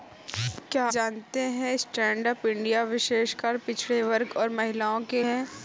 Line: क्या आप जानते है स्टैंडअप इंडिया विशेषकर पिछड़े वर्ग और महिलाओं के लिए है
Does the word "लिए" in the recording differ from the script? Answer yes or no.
yes